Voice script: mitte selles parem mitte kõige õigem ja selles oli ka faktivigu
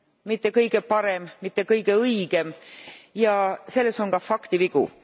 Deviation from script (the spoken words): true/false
true